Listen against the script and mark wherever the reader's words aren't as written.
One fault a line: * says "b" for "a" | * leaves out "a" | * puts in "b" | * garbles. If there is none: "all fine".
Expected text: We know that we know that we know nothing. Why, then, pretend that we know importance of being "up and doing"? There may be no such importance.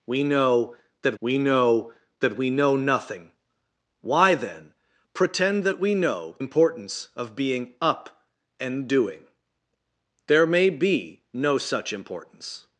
all fine